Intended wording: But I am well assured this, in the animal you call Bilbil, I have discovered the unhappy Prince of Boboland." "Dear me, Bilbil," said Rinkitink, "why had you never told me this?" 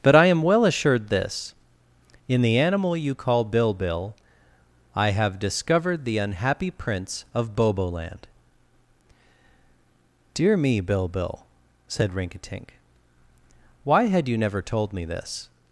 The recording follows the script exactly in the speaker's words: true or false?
true